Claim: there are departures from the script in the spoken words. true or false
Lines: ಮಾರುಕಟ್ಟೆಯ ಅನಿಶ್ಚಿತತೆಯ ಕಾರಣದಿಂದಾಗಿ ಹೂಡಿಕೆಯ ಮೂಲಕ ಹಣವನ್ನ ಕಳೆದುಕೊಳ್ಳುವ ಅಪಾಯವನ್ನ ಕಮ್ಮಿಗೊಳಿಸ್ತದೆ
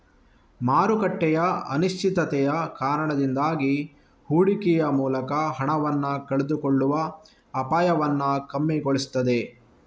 false